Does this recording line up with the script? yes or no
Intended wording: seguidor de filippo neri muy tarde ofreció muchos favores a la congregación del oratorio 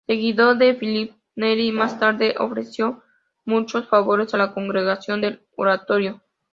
no